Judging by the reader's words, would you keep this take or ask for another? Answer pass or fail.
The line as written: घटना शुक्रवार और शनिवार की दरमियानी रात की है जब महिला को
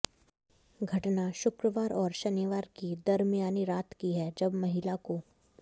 pass